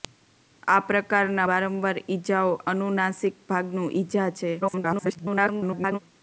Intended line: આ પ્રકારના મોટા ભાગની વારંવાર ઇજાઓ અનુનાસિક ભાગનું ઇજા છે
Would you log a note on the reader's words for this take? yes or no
yes